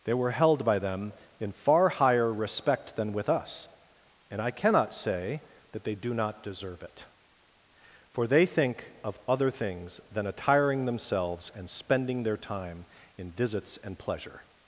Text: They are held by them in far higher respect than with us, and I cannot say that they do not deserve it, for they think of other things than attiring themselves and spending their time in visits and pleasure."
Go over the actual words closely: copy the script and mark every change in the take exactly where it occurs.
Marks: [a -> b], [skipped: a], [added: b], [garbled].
They [are -> were] held by them in far higher respect than with us, and I cannot say that they do not deserve it, for they think of other things than attiring themselves and spending their time in visits and pleasure."